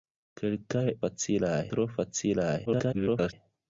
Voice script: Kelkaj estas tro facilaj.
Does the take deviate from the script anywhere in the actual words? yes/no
yes